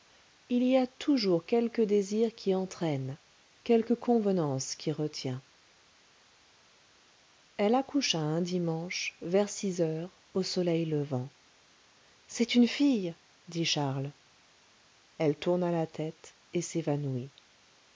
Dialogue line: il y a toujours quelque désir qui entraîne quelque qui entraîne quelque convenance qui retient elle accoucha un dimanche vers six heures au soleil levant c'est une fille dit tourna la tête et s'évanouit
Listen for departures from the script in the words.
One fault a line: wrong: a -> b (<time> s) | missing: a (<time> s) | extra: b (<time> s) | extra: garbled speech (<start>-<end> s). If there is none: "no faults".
missing: qui entraîne quelque (3.9 s)
extra: charles elle (13.7 s)